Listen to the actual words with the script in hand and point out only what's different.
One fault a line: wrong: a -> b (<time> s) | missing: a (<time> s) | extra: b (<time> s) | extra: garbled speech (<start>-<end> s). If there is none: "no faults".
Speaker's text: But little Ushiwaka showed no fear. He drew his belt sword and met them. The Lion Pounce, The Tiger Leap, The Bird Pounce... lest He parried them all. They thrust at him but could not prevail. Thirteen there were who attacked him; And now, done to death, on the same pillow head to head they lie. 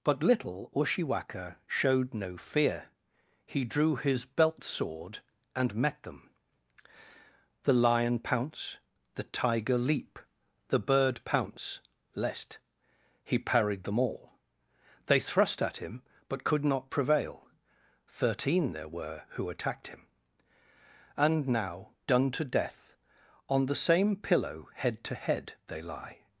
no faults